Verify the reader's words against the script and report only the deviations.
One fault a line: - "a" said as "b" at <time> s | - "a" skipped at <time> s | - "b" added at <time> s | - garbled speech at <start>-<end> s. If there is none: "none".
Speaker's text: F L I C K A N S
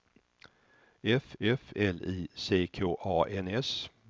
- "f" added at 1.4 s